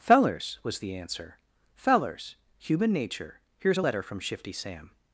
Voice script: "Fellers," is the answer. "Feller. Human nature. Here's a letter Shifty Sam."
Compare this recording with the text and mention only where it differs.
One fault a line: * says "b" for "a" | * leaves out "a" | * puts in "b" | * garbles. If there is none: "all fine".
* says "was" for "is"
* says "Fellers" for "Feller"
* puts in "from"